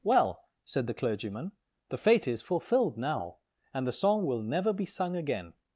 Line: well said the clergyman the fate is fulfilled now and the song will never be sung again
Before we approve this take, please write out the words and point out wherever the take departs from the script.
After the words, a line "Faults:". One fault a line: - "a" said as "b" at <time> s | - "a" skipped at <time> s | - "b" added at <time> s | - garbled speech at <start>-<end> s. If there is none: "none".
well said the clergyman the fate is fulfilled now and the song will never be sung again
Faults:
none